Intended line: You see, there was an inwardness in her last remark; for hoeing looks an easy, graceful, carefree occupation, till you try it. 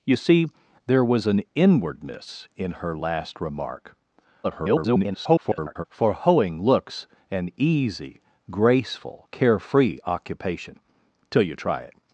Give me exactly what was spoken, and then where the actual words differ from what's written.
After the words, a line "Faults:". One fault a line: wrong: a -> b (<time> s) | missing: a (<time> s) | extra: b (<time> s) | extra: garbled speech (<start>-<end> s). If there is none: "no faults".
You see, there was an inwardness in her last remark; [garbled] for hoeing looks an easy, graceful, carefree occupation, till you try it.
Faults:
extra: garbled speech (4.4-5.8 s)